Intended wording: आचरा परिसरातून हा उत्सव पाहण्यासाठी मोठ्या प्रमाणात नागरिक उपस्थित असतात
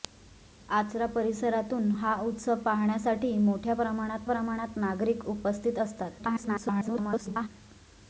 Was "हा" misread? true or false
false